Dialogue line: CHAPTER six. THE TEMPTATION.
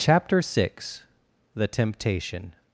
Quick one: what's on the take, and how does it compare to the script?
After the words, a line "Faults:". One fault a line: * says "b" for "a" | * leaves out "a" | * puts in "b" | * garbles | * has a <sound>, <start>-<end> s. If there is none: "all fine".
CHAPTER six. THE TEMPTATION.
Faults:
all fine